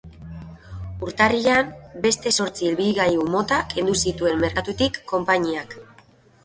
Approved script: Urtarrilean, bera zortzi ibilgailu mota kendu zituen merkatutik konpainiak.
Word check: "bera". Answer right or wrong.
wrong